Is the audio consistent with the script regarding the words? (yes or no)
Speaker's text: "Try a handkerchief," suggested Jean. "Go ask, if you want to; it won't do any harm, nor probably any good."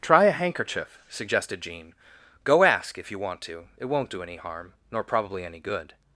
yes